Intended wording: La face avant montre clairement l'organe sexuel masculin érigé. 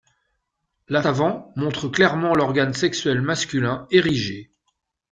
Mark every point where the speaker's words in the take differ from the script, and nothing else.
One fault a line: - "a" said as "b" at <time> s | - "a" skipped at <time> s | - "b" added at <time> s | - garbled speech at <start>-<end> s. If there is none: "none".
- "face" skipped at 1.0 s